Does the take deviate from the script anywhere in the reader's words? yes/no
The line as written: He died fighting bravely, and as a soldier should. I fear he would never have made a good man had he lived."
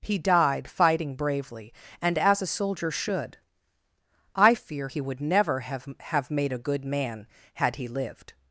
yes